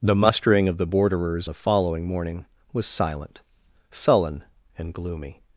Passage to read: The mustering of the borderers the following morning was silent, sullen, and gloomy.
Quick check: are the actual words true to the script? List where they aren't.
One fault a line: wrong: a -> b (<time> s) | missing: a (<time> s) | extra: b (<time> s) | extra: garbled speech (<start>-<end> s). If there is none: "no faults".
no faults